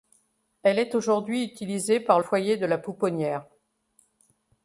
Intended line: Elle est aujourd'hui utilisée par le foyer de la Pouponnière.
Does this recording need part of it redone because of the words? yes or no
yes